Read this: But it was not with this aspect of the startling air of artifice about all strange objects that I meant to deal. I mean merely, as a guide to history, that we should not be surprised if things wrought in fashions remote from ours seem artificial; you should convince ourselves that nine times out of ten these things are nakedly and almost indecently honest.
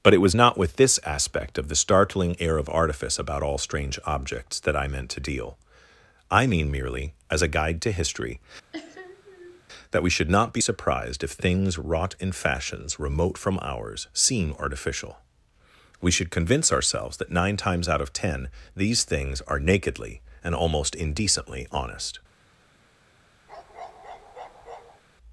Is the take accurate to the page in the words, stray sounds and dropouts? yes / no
no